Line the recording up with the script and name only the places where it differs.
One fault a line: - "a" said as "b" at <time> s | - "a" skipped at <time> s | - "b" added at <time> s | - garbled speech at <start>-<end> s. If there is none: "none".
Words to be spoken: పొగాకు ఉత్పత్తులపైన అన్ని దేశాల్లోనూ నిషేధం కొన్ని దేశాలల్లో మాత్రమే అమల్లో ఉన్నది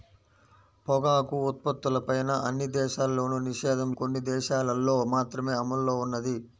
none